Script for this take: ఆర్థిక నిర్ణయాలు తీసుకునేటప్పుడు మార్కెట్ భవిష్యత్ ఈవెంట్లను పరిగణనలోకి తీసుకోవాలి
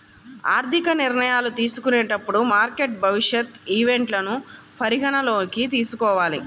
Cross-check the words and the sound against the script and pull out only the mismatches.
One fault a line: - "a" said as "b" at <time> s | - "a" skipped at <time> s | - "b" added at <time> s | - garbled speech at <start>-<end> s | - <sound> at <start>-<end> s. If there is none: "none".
none